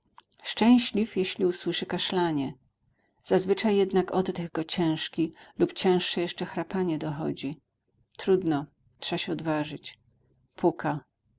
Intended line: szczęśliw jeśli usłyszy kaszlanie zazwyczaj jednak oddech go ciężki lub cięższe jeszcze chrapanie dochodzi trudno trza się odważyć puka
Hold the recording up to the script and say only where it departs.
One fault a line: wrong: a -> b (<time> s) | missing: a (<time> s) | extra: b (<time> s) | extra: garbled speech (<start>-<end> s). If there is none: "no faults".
no faults